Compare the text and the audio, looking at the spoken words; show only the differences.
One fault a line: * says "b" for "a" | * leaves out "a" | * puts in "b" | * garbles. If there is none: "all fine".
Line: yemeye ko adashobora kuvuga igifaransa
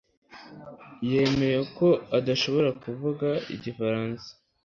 all fine